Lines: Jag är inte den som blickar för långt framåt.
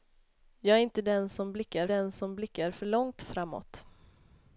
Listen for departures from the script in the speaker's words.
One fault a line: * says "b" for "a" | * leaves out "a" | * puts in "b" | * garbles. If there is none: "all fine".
* puts in "den som blickar"